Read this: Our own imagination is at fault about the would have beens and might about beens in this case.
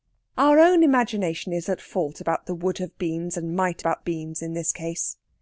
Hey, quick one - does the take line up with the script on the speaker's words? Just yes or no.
yes